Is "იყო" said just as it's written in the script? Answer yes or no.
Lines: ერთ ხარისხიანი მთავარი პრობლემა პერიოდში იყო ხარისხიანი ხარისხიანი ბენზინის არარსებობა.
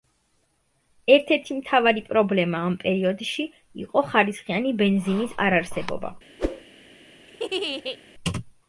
yes